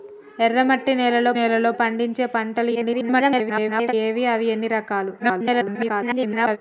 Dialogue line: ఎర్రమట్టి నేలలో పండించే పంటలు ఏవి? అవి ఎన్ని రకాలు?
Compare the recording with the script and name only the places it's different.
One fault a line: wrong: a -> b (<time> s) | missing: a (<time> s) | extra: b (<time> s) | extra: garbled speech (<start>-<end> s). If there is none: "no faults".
extra: నేలలో (1.3 s)
extra: garbled speech (2.7-3.9 s)
extra: garbled speech (5.2-6.6 s)